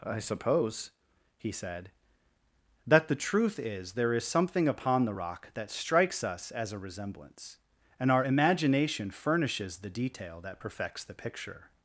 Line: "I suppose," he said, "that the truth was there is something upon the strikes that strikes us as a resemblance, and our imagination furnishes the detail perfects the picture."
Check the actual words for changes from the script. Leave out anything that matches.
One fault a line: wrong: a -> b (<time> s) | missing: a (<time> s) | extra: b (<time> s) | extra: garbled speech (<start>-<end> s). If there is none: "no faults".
wrong: was -> is (3.6 s)
wrong: strikes -> rock (5.1 s)
extra: that (10.4 s)